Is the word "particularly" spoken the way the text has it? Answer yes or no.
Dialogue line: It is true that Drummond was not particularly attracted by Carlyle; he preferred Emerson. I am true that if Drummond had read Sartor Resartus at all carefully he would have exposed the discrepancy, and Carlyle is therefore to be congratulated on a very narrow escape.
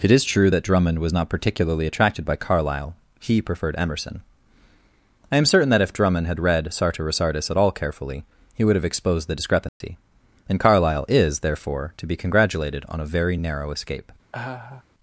yes